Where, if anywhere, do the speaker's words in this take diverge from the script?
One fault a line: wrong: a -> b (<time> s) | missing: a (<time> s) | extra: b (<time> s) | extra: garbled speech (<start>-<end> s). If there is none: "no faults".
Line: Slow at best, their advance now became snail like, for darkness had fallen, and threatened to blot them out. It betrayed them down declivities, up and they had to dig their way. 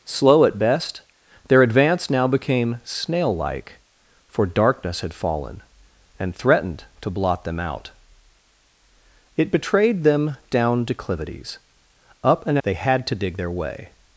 no faults